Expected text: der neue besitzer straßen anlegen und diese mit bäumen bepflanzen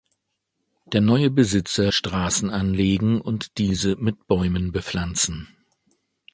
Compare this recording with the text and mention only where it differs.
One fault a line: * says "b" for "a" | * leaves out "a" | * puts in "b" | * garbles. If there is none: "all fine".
all fine